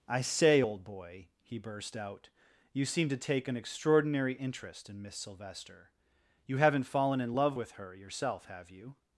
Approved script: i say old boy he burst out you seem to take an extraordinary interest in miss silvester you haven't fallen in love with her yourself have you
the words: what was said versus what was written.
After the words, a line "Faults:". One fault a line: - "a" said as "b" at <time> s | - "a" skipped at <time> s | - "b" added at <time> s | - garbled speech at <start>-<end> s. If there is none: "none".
i say old boy he burst out you seem to take an extraordinary interest in miss silvester you haven't fallen in love with her yourself have you
Faults:
none